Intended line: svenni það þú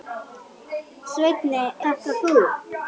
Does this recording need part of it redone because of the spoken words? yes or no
no